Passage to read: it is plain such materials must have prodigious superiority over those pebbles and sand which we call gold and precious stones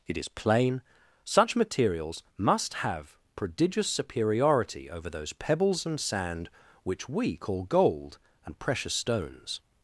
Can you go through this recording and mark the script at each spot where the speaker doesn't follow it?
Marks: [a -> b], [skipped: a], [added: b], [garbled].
it is plain such materials must have prodigious superiority over those pebbles and sand which we call gold and precious stones